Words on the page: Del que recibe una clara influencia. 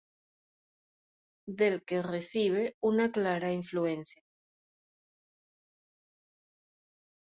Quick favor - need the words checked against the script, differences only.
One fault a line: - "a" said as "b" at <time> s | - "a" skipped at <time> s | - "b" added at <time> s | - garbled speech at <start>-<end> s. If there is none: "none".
none